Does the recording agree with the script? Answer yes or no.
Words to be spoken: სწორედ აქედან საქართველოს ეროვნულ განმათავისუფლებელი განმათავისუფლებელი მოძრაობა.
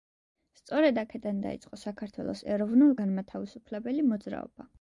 no